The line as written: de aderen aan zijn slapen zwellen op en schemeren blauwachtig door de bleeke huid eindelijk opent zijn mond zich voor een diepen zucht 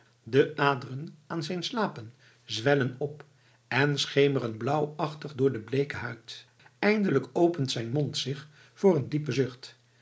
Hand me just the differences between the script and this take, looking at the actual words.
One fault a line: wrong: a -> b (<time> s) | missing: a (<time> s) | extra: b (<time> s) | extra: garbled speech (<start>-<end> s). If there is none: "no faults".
no faults